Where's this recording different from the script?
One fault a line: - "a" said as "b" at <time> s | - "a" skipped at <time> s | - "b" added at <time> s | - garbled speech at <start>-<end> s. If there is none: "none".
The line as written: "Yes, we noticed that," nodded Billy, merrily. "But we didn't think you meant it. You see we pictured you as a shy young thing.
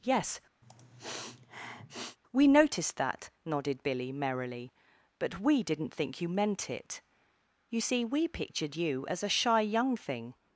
none